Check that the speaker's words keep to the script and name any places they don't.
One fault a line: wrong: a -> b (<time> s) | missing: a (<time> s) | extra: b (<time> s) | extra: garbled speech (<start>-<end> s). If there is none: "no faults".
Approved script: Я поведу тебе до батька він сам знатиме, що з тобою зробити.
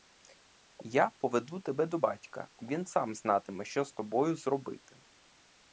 no faults